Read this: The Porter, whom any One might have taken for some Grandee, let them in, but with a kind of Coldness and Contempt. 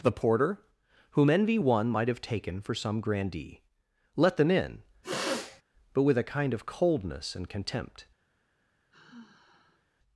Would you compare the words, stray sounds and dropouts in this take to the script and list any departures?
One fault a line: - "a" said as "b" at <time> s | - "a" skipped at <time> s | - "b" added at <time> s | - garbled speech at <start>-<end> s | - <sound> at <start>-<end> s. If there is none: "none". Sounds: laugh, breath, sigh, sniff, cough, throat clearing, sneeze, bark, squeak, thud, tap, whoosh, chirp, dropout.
- "any" said as "envy" at 1.3 s
- sniff at 5.0-5.6 s
- sigh at 8.9-9.9 s